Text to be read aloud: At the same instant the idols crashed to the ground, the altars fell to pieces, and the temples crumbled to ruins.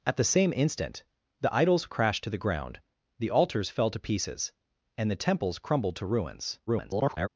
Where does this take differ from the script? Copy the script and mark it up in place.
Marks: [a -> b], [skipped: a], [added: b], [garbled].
At the same instant the idols crashed to the ground, the altars fell to pieces, and the temples crumbled to ruins. [garbled]